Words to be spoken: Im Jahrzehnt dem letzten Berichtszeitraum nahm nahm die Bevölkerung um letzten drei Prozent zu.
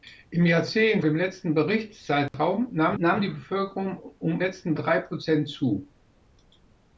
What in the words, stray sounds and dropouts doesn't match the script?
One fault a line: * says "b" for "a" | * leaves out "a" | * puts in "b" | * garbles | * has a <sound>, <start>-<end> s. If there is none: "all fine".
* has a dropout, 2.3-2.3 s